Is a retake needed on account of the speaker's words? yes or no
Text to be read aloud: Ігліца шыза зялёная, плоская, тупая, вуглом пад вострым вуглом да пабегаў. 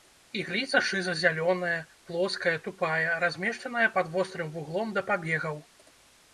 yes